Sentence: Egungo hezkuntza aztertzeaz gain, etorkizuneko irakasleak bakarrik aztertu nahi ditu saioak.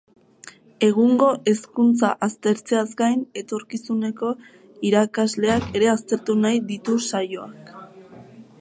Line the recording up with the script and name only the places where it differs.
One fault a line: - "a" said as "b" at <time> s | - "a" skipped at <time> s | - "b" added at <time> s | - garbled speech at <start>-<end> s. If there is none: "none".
- "bakarrik" said as "ere" at 5.8 s